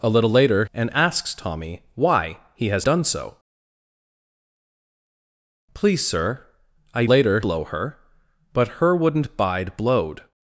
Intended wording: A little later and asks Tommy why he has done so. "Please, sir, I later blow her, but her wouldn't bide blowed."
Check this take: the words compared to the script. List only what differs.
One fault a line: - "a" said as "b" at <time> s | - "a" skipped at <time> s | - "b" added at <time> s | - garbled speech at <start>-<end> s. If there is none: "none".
none